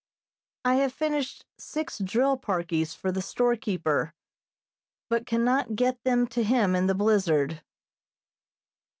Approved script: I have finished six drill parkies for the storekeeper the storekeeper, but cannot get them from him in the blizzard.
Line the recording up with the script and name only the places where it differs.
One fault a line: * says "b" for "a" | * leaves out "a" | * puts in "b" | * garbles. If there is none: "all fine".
* leaves out "the storekeeper"
* says "to" for "from"